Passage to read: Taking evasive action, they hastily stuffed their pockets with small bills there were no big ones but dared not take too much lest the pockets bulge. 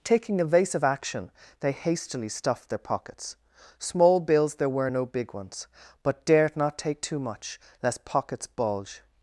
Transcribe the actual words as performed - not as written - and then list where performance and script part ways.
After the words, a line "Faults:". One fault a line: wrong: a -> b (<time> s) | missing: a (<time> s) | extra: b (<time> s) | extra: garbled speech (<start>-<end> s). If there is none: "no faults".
Taking evasive action, they hastily stuffed their pockets small bills there were no big ones but dared not take too much lest pockets bulge.
Faults:
missing: with (3.4 s)
missing: the (8.0 s)